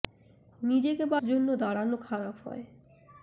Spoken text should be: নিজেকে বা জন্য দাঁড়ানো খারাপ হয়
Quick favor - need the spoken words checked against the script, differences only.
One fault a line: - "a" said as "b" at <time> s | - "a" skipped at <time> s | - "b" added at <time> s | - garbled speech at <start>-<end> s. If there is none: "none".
none